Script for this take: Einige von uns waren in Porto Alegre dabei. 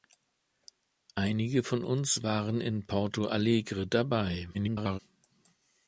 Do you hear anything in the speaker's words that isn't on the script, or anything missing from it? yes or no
yes